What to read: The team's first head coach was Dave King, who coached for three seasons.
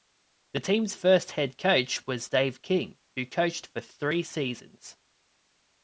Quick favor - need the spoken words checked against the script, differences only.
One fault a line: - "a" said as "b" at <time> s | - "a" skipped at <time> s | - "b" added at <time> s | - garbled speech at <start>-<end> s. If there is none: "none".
none